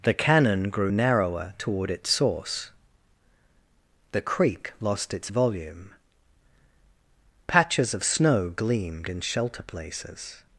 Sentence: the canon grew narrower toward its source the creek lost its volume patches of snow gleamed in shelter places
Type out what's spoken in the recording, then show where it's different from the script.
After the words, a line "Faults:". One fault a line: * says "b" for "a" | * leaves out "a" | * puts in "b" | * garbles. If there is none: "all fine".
the canon grew narrower toward its source the creek lost its volume patches of snow gleamed in shelter places
Faults:
all fine